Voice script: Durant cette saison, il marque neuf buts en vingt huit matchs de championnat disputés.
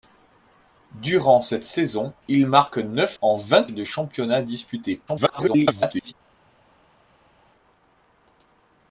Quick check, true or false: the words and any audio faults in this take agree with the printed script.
false